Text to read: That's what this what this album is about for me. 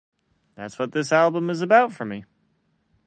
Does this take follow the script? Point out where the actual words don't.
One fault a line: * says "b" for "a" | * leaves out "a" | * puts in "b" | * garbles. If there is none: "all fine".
* leaves out "what this"